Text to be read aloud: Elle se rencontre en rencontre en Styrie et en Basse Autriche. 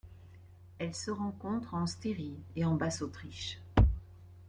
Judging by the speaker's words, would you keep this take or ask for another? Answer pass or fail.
fail